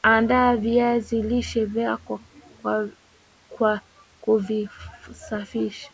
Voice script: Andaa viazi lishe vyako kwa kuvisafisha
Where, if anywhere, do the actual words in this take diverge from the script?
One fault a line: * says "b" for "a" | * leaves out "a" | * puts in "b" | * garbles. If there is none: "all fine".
all fine